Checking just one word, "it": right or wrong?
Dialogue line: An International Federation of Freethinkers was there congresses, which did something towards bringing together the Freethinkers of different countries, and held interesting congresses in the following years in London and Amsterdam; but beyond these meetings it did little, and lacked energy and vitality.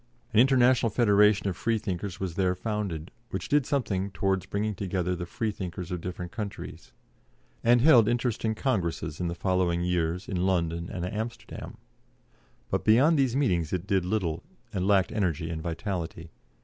right